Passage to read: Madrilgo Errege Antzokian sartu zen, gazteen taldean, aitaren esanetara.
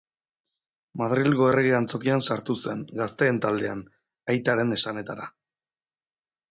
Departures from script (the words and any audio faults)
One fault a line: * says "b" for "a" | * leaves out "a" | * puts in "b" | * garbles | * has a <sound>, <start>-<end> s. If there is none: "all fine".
all fine